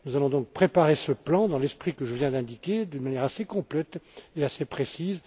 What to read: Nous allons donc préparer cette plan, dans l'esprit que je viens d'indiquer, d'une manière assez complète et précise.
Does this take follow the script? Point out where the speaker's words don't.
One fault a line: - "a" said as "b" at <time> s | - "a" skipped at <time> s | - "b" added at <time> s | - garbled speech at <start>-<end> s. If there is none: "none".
- "cette" said as "ce" at 0.9 s
- "assez" added at 4.4 s